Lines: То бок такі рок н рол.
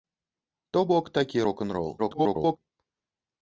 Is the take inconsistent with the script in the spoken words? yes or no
yes